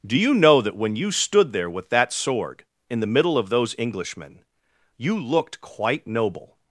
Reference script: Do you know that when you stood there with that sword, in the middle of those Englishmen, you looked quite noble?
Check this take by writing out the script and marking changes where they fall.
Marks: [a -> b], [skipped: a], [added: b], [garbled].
Do you know that when you stood there with that sword, in the middle of those Englishmen, you looked quite noble?